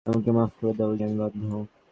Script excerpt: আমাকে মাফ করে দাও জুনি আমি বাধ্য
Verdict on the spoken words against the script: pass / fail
fail